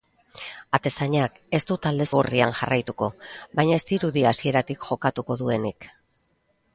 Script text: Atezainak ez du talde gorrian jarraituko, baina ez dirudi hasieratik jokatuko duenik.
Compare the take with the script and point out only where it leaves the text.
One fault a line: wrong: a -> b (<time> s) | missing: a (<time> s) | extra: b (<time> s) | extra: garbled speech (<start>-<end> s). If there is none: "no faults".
no faults